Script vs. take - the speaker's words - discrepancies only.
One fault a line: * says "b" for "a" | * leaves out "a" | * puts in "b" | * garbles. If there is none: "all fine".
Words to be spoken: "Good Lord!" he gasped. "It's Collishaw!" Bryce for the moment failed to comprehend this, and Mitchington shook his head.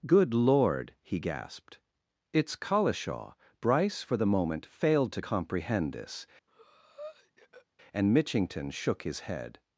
all fine